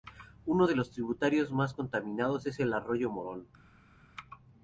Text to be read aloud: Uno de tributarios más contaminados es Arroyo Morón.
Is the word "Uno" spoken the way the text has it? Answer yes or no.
yes